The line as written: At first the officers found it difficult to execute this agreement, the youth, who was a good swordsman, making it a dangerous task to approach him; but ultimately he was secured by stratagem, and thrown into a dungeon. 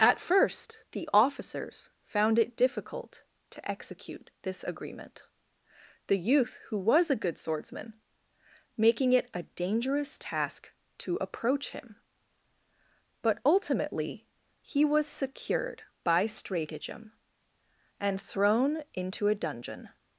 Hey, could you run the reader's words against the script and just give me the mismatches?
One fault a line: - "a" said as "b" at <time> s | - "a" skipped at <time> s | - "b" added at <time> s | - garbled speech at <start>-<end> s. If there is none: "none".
none